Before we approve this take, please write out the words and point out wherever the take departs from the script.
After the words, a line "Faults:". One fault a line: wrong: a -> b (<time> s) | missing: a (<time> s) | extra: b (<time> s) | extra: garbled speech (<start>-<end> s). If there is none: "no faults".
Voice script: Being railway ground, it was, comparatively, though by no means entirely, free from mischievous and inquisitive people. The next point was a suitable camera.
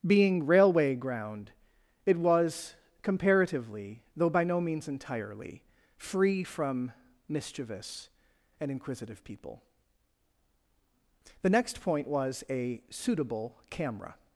Being railway ground, it was, comparatively, though by no means entirely, free from mischievous and inquisitive people. The next point was a suitable camera.
Faults:
no faults